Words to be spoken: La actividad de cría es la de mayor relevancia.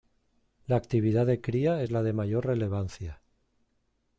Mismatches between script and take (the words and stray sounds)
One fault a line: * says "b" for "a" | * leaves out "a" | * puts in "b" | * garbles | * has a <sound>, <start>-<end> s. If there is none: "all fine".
all fine